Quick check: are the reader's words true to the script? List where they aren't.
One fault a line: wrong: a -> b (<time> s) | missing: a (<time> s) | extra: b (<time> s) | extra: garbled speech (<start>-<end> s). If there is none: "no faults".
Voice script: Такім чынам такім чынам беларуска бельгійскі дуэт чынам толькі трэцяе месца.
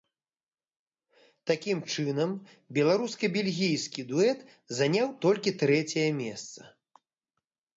missing: такім чынам (2.3 s)
wrong: чынам -> заняў (4.8 s)